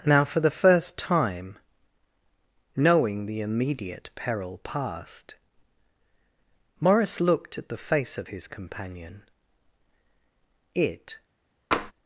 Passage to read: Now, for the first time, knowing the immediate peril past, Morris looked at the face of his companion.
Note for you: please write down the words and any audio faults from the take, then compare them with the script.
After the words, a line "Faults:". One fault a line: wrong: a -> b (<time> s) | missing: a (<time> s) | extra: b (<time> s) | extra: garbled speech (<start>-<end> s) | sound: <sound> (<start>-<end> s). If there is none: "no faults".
Now, for the first time, knowing the immediate peril past, Morris looked at the face of his companion. It
Faults:
extra: It (10.8 s)
sound: tap (11.7-11.9 s)